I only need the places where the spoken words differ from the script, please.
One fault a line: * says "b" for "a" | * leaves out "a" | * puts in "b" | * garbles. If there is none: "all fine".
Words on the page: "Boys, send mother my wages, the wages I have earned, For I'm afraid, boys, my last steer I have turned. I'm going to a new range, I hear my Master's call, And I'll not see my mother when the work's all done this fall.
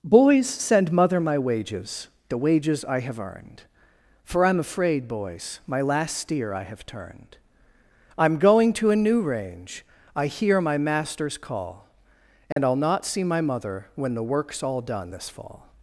all fine